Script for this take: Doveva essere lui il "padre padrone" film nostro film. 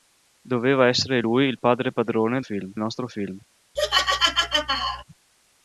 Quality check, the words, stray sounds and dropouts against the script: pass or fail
fail